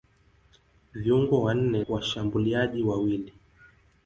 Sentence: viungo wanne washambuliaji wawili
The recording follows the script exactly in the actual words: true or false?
true